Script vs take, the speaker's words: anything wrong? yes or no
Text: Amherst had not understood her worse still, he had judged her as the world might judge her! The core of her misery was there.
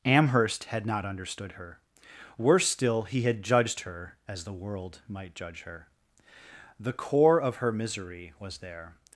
no